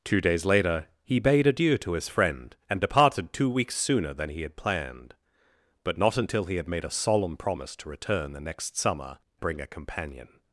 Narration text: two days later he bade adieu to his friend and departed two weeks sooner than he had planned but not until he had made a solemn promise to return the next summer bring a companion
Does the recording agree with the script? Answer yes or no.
yes